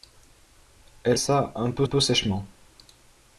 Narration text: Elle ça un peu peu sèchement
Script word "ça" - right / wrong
right